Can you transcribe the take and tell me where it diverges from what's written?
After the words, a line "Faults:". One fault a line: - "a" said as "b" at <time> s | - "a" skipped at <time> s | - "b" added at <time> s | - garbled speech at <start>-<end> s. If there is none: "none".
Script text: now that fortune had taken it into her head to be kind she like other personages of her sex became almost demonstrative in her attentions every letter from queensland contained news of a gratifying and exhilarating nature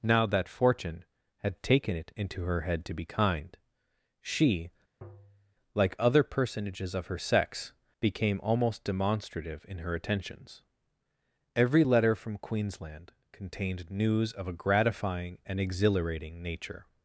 now that fortune had taken it into her head to be kind she like other personages of her sex became almost demonstrative in her attentions every letter from queensland contained news of a gratifying and exhilarating nature
Faults:
none